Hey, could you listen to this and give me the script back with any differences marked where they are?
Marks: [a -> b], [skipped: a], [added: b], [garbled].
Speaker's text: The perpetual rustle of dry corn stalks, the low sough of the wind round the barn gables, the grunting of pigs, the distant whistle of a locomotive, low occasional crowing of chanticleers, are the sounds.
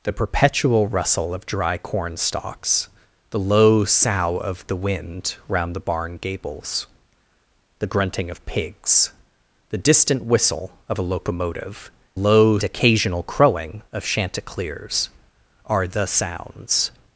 The perpetual rustle of dry corn stalks, the low sough of the wind round the barn gables, the grunting of pigs, the distant whistle of a locomotive, low occasional crowing of chanticleers, are the sounds.